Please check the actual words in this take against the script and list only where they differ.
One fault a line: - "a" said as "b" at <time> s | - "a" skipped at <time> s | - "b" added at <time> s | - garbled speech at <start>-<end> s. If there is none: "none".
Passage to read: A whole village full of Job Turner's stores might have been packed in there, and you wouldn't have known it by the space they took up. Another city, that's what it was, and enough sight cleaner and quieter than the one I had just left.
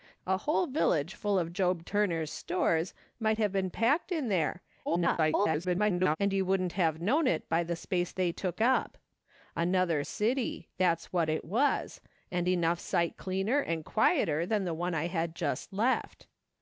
- garbled speech at 4.9-6.2 s